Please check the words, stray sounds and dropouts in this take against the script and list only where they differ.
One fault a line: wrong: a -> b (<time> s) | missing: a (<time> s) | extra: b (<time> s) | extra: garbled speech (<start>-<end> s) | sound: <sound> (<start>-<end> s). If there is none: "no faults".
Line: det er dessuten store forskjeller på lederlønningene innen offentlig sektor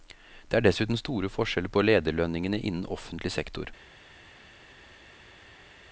no faults